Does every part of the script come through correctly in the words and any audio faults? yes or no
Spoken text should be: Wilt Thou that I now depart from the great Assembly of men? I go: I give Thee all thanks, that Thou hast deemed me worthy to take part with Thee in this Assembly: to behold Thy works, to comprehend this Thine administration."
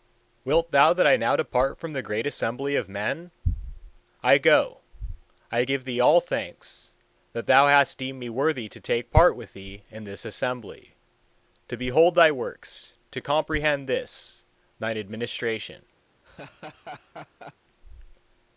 no